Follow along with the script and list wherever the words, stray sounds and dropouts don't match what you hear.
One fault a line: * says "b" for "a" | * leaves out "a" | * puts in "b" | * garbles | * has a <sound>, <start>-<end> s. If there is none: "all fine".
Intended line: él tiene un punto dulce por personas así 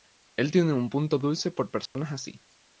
* has a dropout, 1.9-2.0 s